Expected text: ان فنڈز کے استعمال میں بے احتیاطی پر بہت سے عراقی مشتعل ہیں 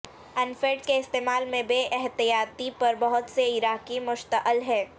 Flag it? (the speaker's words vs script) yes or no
no